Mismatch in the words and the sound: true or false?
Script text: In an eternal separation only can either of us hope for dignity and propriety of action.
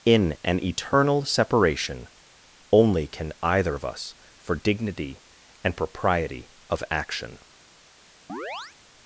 true